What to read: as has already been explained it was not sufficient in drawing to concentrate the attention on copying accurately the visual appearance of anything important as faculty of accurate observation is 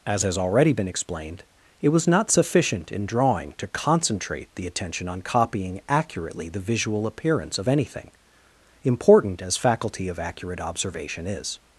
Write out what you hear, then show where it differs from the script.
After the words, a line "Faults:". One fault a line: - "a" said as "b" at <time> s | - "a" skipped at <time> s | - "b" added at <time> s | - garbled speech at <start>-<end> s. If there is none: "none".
as has already been explained it was not sufficient in drawing to concentrate the attention on copying accurately the visual appearance of anything important as faculty of accurate observation is
Faults:
none